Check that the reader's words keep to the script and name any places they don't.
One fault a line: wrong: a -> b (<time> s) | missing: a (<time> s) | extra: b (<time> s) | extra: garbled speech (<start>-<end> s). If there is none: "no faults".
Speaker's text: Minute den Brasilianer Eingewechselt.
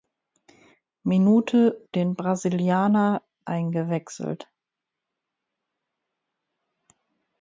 no faults